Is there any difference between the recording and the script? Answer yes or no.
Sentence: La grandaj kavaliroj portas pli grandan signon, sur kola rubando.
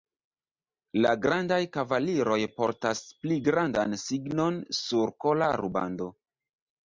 no